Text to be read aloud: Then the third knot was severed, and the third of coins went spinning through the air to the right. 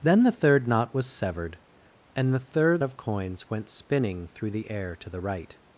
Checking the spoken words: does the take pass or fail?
pass